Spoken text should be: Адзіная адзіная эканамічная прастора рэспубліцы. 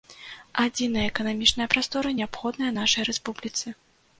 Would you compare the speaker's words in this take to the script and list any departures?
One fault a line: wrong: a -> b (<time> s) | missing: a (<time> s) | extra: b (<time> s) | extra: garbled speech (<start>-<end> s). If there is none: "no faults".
missing: адзіная (1.0 s)
extra: неабходная нашай (2.2 s)